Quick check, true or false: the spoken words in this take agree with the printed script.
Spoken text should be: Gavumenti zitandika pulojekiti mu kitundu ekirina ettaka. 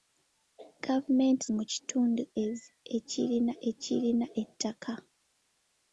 false